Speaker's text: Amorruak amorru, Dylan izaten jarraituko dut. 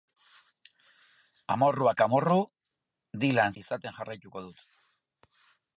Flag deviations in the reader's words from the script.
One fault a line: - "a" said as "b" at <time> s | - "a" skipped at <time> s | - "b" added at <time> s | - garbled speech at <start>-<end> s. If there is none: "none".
none